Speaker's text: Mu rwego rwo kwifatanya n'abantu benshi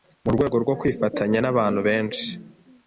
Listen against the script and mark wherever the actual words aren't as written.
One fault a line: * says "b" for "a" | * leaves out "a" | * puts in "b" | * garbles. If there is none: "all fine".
all fine